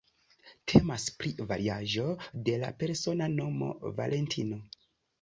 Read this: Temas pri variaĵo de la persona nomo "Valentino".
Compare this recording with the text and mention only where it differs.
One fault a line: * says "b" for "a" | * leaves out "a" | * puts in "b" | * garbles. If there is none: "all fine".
all fine